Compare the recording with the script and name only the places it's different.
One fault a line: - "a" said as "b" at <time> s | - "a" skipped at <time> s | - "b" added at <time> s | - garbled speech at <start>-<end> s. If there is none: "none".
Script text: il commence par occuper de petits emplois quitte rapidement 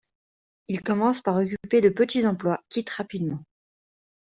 none